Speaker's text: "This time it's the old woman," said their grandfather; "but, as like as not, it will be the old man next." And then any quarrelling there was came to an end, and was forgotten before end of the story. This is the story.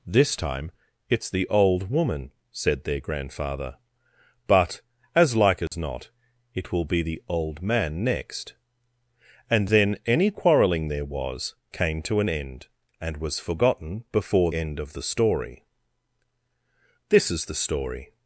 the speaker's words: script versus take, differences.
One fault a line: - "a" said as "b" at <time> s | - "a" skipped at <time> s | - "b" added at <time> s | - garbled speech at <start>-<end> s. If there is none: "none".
none